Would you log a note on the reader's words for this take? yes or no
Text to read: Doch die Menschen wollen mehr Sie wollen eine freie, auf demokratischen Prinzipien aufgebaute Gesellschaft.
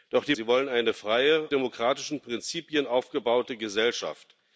yes